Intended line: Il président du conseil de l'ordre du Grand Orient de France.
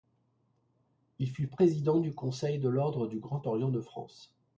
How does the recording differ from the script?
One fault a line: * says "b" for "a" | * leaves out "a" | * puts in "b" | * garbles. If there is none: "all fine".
* puts in "fut"